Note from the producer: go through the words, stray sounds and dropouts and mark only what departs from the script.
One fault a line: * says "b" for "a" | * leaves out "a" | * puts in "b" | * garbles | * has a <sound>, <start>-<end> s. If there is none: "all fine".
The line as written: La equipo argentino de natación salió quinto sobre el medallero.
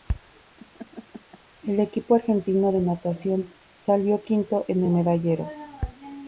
* has a laugh, 0.6-1.4 s
* says "El" for "La"
* says "en" for "sobre"